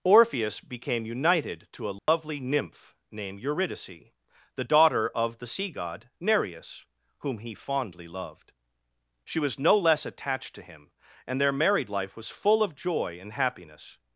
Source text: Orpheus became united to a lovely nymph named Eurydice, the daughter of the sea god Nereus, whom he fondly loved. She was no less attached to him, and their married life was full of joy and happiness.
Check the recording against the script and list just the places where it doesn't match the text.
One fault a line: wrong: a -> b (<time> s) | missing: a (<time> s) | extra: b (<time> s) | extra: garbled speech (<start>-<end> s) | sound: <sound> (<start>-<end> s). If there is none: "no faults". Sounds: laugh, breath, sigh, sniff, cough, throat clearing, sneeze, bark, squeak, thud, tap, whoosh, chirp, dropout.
sound: dropout (2.0-2.1 s)